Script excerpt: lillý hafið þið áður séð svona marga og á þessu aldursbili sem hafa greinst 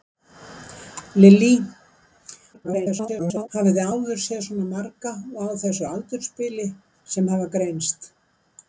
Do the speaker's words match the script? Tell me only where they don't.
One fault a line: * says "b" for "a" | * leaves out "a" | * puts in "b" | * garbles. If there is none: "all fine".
* garbles